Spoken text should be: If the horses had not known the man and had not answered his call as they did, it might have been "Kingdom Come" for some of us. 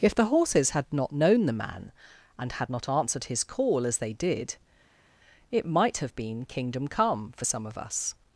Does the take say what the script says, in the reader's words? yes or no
yes